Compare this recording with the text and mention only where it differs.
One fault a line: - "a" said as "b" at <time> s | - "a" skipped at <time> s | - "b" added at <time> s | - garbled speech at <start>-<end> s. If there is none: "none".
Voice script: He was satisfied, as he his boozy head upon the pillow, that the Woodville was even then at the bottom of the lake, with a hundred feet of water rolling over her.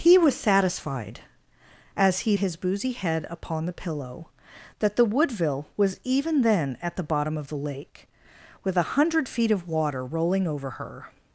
none